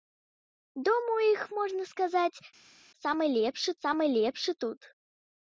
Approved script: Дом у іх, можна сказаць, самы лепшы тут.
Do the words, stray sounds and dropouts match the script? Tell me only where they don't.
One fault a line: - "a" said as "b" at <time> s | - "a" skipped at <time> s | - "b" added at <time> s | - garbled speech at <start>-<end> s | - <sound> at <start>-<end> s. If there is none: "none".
- "самы лепшы" added at 3.8 s